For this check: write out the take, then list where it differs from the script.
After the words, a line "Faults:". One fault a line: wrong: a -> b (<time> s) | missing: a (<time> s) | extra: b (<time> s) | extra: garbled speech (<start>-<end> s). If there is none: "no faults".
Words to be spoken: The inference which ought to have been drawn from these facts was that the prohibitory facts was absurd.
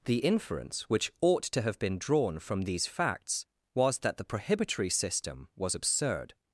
The inference which ought to have been drawn from these facts was that the prohibitory system was absurd.
Faults:
wrong: facts -> system (4.9 s)